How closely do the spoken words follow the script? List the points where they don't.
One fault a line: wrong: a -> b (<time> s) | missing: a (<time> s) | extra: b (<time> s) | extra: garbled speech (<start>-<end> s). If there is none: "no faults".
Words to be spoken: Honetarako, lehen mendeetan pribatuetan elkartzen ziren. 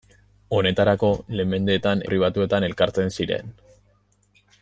no faults